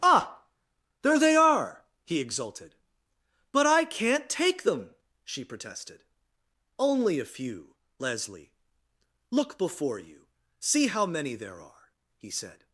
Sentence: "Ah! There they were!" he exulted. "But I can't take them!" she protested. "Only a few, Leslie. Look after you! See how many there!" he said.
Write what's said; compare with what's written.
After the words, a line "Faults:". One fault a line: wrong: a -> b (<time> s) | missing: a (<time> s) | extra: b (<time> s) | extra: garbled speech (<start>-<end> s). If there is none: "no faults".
"Ah! There they are!" he exulted. "But I can't take them!" she protested. "Only a few, Leslie. Look before you! See how many there are!" he said.
Faults:
wrong: were -> are (1.4 s)
wrong: after -> before (9.6 s)
extra: are (11.6 s)